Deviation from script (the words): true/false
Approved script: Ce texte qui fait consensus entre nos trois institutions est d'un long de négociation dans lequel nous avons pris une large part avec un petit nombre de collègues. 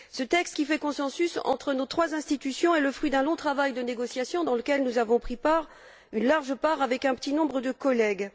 true